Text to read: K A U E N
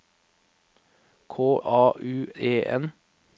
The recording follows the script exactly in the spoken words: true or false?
true